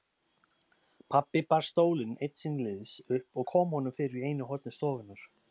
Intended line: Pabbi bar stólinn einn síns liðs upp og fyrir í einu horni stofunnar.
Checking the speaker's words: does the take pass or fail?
fail